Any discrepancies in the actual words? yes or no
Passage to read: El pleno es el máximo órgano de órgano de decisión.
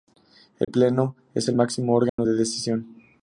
yes